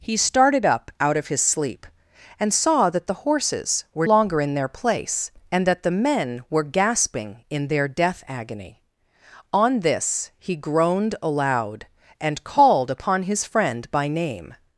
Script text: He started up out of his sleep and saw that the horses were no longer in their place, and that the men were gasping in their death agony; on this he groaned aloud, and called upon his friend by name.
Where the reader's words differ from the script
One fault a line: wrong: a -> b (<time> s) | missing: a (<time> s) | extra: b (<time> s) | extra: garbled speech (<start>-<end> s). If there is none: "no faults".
missing: no (4.1 s)